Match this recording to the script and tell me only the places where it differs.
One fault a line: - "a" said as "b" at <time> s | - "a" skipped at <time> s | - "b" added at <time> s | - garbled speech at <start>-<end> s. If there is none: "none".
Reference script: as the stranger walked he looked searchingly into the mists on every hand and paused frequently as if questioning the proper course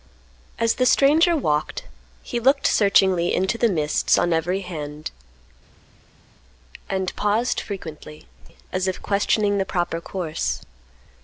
none